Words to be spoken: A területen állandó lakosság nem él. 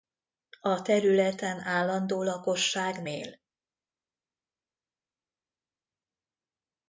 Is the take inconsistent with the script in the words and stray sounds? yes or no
yes